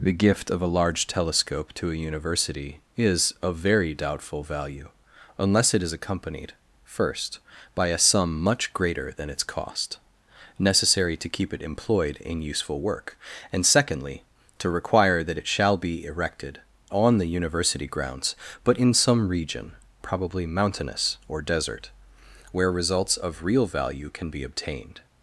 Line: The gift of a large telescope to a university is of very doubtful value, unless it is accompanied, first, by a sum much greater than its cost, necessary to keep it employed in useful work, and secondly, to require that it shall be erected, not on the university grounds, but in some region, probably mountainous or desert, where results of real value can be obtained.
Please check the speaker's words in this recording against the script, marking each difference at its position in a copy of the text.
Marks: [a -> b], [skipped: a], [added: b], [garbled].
The gift of a large telescope to a university is of very doubtful value, unless it is accompanied, first, by a sum much greater than its cost, necessary to keep it employed in useful work, and secondly, to require that it shall be erected, [skipped: not] on the university grounds, but in some region, probably mountainous or desert, where results of real value can be obtained.